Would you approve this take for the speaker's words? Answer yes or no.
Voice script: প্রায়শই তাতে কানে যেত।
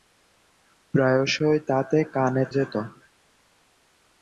yes